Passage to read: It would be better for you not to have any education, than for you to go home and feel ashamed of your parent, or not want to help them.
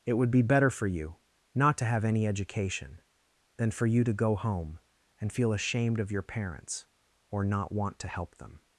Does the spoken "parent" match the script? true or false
false